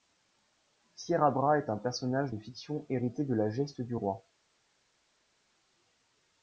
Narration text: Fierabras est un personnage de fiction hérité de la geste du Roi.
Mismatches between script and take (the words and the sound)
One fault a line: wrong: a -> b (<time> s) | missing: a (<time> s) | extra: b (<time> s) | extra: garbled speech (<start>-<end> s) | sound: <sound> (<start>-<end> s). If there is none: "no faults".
no faults